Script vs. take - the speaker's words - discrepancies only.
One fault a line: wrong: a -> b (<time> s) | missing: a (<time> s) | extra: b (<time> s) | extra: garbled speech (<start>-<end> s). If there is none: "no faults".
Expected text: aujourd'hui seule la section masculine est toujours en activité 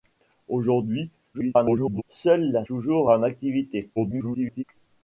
extra: garbled speech (1.3-2.0 s)
missing: section masculine est (2.7 s)
extra: garbled speech (4.0-4.6 s)